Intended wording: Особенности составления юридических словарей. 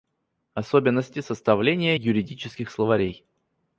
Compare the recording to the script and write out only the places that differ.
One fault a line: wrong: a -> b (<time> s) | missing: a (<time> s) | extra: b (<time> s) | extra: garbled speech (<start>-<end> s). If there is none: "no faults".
no faults